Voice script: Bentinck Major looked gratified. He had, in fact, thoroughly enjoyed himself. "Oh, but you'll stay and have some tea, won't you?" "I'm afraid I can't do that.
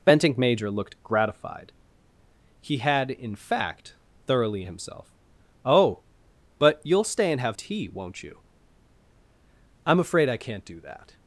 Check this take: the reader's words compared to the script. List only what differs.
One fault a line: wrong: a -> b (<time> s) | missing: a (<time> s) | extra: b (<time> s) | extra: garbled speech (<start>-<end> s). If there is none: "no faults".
missing: enjoyed (4.6 s)
missing: some (7.6 s)